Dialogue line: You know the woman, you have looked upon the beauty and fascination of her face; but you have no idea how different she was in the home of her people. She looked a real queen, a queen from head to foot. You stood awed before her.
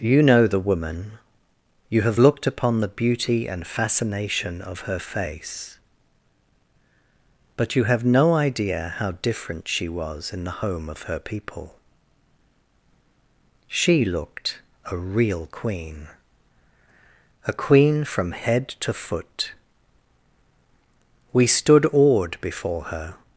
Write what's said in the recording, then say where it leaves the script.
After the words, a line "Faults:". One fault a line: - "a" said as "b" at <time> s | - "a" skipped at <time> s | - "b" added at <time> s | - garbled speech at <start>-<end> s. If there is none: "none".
You know the woman, you have looked upon the beauty and fascination of her face; but you have no idea how different she was in the home of her people. She looked a real queen, a queen from head to foot. We stood awed before her.
Faults:
- "You" said as "We" at 21.3 s